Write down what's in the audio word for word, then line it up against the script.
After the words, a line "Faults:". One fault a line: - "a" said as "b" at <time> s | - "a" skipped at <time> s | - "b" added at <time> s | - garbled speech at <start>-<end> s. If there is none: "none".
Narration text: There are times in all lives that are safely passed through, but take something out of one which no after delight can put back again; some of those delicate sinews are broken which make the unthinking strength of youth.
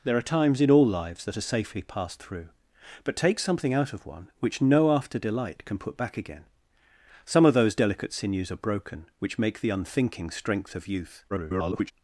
There are times in all lives that are safely passed through, but take something out of one which no after delight can put back again; some of those delicate sinews are broken which make the unthinking strength of youth. [garbled]
Faults:
- garbled speech at 11.3-11.9 s